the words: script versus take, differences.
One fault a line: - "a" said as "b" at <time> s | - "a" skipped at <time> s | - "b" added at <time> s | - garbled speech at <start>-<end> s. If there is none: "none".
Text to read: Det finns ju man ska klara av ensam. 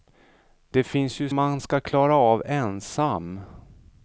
none